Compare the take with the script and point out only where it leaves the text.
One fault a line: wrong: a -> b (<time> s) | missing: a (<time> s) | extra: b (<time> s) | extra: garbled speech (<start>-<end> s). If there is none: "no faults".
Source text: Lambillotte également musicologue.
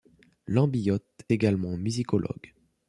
no faults